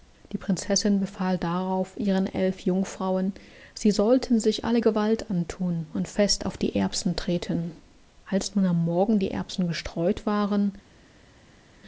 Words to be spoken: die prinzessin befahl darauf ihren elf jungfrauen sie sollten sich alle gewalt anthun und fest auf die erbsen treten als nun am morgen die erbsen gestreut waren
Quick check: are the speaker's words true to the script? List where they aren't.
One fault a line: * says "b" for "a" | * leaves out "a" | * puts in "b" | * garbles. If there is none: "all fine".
all fine